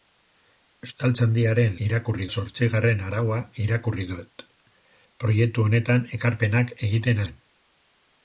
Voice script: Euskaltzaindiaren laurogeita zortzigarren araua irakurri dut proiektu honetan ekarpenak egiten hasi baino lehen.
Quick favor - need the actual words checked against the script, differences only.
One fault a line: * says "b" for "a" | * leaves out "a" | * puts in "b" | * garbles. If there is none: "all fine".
* says "irakurri" for "laurogeita"
* leaves out "hasi baino"